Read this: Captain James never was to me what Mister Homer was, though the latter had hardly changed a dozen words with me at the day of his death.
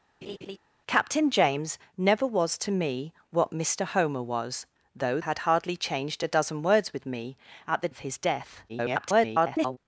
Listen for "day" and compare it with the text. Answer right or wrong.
wrong